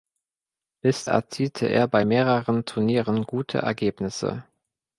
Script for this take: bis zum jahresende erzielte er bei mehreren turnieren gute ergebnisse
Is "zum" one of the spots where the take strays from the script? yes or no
yes